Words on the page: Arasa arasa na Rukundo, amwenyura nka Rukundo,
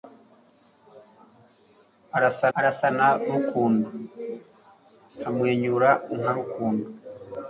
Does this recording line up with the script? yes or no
yes